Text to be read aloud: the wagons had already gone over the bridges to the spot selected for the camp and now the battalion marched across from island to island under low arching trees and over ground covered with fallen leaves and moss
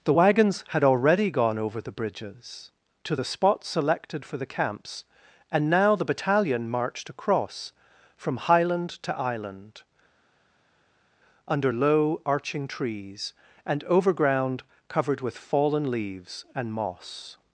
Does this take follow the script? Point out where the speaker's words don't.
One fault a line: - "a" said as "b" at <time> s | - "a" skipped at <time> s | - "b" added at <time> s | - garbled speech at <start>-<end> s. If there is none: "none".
- "camp" said as "camps" at 4.4 s
- "island" said as "highland" at 8.4 s